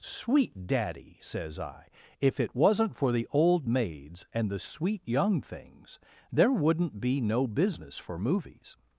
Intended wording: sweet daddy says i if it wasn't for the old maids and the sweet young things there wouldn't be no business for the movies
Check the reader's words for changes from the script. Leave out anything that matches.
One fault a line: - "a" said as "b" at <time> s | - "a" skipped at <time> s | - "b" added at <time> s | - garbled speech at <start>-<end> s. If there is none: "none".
- "the" skipped at 8.2 s